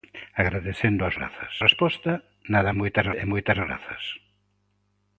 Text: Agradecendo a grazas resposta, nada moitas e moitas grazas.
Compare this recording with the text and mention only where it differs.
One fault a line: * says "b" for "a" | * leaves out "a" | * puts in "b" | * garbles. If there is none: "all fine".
all fine